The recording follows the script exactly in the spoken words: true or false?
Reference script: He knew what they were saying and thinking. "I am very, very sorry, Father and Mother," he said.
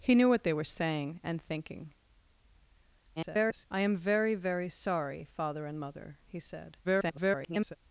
false